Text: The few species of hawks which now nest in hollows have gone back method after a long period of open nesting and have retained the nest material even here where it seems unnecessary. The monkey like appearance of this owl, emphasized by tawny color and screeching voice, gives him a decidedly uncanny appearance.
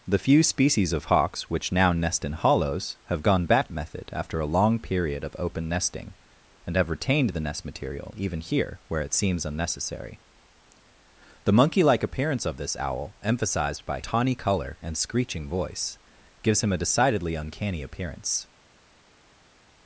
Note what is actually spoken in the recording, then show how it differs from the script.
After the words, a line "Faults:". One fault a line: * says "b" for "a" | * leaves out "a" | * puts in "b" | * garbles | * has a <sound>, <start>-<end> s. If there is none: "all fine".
The few species of hawks which now nest in hollows have gone back method after a long period of open nesting and have retained the nest material even here where it seems unnecessary. The monkey like appearance of this owl, emphasized by tawny color and screeching voice, gives him a decidedly uncanny appearance.
Faults:
all fine